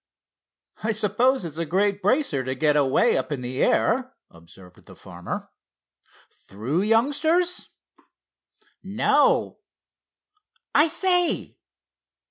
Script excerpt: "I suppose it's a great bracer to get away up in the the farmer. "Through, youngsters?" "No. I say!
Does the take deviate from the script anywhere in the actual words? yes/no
yes